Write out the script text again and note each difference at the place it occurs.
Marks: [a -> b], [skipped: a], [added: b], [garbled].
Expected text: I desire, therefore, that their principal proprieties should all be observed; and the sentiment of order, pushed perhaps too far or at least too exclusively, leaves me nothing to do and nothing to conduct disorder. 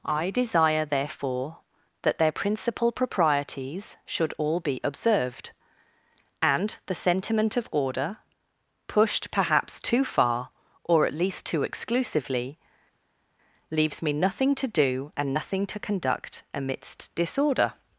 I desire, therefore, that their principal proprieties should all be observed; and the sentiment of order, pushed perhaps too far or at least too exclusively, leaves me nothing to do and nothing to conduct [added: amidst] disorder.